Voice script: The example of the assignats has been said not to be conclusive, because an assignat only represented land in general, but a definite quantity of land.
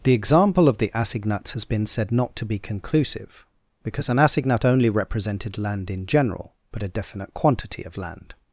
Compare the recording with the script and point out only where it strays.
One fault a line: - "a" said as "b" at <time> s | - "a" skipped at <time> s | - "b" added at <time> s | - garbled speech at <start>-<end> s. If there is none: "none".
none